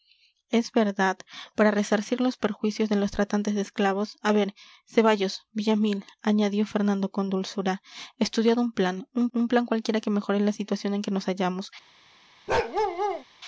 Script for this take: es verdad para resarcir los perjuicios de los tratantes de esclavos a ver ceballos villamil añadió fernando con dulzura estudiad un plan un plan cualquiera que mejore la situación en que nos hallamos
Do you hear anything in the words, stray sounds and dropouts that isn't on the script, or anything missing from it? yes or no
yes